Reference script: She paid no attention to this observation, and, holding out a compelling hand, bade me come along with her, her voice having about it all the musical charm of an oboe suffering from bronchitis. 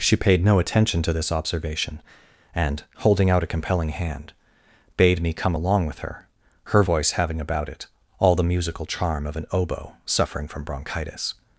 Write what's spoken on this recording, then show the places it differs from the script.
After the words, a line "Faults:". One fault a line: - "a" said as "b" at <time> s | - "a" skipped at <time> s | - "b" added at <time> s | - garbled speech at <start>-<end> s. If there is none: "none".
She paid no attention to this observation, and, holding out a compelling hand, bade me come along with her, her voice having about it all the musical charm of an oboe suffering from bronchitis.
Faults:
none